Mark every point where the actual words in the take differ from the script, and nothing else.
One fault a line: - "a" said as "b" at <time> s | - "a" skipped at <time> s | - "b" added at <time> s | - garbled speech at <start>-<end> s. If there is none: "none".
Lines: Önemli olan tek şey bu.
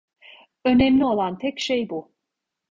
none